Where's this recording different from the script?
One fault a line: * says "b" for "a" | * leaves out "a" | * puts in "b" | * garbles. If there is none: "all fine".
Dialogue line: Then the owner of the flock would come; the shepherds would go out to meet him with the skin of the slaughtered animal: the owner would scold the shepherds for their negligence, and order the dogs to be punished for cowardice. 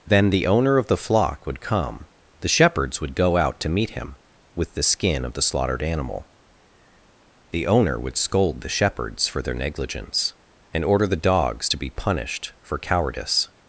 all fine